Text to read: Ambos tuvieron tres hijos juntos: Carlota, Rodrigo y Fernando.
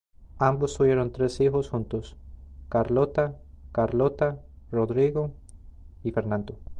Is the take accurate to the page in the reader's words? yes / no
no